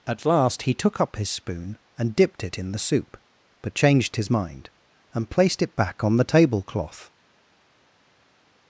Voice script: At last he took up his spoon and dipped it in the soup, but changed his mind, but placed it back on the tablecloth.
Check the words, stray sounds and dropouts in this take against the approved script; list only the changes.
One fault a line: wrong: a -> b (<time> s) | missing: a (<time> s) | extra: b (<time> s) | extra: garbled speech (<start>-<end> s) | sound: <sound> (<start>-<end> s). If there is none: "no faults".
wrong: but -> and (5.1 s)